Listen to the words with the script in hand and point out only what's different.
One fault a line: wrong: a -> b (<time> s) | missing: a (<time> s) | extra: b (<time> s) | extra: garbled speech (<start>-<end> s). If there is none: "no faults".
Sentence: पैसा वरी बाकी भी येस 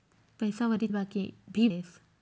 no faults